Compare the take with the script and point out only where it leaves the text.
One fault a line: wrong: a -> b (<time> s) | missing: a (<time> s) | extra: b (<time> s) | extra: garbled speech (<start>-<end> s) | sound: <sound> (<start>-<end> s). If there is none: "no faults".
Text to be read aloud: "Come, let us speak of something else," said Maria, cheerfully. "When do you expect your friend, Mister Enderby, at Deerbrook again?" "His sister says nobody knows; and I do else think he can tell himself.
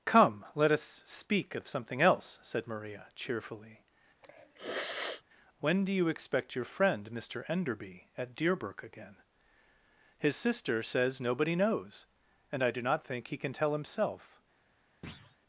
sound: sniff (4.2-5.2 s)
wrong: else -> not (12.8 s)
sound: thud (15.0-15.4 s)